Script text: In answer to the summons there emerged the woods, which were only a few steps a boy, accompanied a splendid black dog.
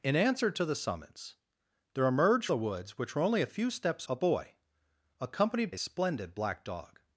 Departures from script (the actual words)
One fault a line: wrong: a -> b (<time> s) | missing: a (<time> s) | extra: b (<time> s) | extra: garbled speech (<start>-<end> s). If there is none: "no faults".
no faults